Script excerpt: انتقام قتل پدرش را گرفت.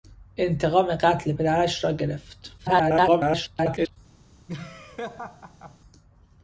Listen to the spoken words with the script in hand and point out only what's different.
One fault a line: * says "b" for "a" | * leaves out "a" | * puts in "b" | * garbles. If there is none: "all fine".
* garbles